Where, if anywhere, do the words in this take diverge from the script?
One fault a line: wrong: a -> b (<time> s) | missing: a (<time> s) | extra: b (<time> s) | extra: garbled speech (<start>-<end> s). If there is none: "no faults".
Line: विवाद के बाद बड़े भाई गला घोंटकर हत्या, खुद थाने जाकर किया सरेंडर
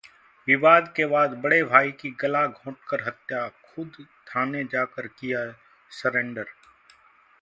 extra: की (1.9 s)